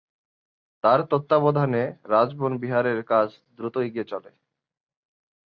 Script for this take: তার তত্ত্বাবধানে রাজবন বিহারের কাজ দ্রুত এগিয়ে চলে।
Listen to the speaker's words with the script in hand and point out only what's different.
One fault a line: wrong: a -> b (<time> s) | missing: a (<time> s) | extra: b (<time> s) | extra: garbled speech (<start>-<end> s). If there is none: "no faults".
no faults